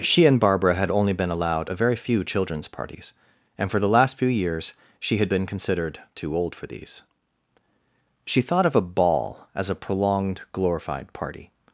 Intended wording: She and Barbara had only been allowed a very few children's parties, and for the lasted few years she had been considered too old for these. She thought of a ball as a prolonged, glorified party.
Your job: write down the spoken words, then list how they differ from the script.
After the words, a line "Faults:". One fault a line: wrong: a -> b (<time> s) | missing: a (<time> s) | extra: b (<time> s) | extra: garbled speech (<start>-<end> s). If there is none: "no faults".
She and Barbara had only been allowed a very few children's parties, and for the last few years she had been considered too old for these. She thought of a ball as a prolonged, glorified party.
Faults:
wrong: lasted -> last (3.9 s)